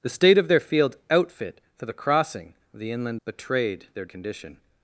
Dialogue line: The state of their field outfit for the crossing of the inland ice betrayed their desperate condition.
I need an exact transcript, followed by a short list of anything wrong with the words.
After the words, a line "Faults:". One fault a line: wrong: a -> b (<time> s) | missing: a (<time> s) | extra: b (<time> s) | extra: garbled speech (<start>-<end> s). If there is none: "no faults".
The state of their field outfit for the crossing of the inland betrayed their condition.
Faults:
missing: ice (3.2 s)
missing: desperate (4.0 s)